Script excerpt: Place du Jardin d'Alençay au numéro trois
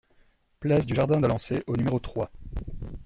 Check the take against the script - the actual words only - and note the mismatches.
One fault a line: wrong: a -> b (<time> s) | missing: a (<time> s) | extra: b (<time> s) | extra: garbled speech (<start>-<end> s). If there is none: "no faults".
no faults